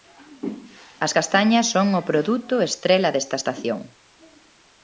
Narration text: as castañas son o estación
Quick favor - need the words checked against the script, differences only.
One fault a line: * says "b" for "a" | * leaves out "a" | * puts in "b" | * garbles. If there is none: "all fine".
* puts in "produto estrela desta"